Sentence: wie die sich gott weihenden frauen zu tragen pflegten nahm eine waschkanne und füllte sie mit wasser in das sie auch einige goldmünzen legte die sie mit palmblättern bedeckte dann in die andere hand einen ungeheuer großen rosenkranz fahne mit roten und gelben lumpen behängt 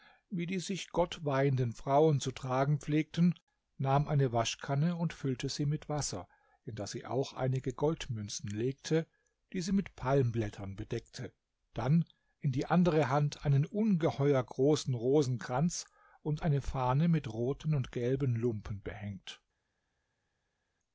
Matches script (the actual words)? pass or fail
fail